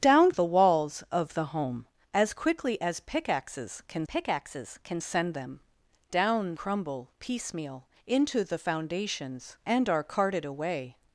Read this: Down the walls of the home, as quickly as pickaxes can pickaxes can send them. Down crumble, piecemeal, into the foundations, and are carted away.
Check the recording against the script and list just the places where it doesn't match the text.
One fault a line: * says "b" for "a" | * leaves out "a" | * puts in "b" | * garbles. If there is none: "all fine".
all fine